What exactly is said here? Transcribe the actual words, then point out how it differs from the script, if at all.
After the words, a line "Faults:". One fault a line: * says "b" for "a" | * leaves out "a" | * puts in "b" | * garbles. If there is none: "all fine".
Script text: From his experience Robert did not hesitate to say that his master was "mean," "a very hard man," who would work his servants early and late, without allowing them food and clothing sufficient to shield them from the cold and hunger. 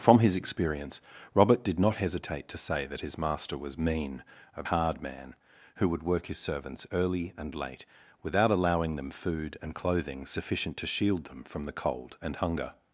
From his experience Robert did not hesitate to say that his master was "mean," "a hard man," who would work his servants early and late, without allowing them food and clothing sufficient to shield them from the cold and hunger.
Faults:
* leaves out "very"